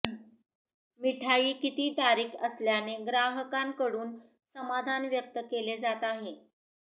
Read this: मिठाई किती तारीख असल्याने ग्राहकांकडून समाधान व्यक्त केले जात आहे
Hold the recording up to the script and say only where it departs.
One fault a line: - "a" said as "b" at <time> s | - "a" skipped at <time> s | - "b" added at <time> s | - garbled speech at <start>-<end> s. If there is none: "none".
none